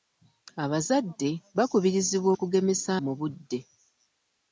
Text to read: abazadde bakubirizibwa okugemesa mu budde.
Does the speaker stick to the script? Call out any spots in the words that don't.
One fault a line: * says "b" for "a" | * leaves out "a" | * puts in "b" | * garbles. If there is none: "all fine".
all fine